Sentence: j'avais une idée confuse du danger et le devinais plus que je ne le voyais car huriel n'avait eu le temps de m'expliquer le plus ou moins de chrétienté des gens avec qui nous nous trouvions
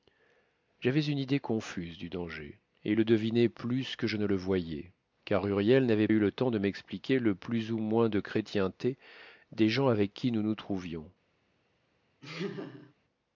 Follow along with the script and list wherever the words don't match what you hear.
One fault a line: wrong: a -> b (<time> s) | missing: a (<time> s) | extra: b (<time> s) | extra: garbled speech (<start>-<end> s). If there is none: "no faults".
no faults